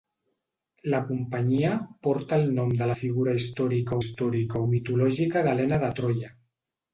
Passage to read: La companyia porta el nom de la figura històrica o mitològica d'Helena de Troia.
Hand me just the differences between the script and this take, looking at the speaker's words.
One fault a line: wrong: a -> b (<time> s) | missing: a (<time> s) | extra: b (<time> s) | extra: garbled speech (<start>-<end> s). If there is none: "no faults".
extra: històrica (4.0 s)